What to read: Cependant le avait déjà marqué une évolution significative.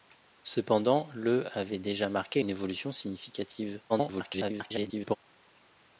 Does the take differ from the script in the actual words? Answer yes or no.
yes